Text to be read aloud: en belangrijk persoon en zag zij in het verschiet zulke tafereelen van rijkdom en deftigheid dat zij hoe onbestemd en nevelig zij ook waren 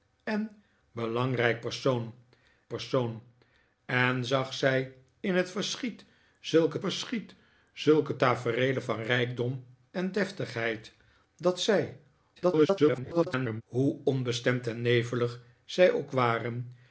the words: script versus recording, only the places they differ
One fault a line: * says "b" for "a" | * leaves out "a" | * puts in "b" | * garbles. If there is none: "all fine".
* puts in "persoon"
* puts in "verschiet zulke"
* garbles